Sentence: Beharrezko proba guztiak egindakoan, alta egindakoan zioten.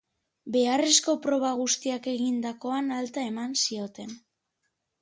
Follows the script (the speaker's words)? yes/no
no